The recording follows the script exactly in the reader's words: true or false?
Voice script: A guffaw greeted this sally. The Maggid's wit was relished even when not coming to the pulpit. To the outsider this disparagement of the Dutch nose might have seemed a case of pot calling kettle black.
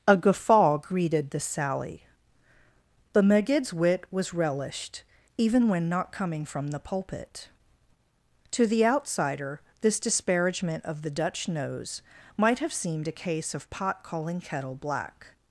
false